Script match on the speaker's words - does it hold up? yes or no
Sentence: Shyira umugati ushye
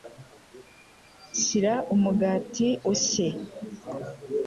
yes